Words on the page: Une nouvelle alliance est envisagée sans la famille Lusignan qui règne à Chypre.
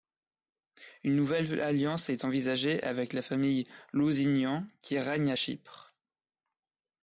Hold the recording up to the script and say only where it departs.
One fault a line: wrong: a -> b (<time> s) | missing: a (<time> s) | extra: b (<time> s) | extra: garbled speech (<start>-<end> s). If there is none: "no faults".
wrong: sans -> avec (2.8 s)